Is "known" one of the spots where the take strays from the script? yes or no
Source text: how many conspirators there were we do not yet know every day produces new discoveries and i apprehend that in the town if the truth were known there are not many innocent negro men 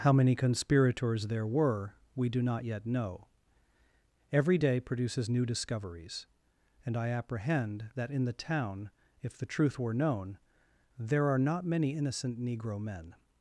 no